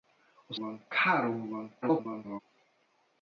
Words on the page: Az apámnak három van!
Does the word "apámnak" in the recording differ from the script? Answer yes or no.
yes